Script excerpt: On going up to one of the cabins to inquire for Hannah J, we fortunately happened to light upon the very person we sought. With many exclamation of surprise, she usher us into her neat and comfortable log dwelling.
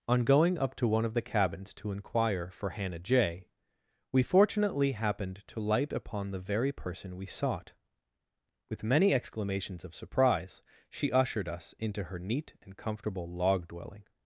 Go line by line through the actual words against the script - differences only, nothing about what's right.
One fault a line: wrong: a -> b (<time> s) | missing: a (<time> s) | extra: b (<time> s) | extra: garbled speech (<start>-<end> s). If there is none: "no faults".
wrong: exclamation -> exclamations (9.1 s)
wrong: usher -> ushered (11.1 s)